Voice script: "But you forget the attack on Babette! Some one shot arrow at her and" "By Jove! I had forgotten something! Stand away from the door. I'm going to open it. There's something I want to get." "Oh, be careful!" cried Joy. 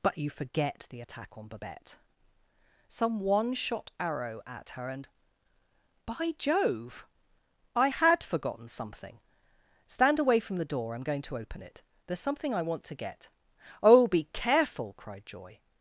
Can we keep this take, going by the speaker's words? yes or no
yes